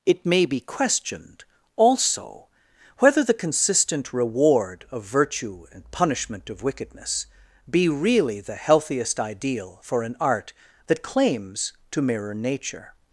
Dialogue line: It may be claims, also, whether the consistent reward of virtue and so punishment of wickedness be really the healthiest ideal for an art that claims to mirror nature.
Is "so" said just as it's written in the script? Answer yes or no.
no